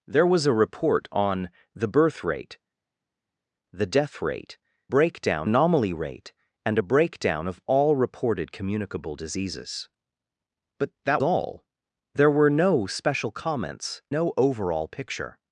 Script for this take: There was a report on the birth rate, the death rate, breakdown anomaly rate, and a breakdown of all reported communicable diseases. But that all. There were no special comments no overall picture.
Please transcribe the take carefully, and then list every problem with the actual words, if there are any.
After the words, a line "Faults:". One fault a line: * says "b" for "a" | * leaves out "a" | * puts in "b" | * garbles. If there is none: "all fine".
There was a report on the birth rate, the death rate, breakdown anomaly rate, and a breakdown of all reported communicable diseases. But that all. There were no special comments no overall picture.
Faults:
all fine